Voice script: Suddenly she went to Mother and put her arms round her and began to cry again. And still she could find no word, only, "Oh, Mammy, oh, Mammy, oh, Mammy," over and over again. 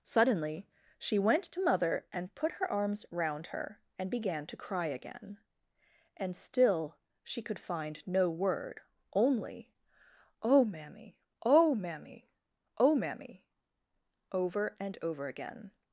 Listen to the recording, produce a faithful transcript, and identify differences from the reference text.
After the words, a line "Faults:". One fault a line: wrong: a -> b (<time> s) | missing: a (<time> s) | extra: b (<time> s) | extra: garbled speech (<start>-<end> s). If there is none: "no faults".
Suddenly she went to Mother and put her arms round her and began to cry again. And still she could find no word, only, "Oh, Mammy, oh, Mammy, oh, Mammy," over and over again.
Faults:
no faults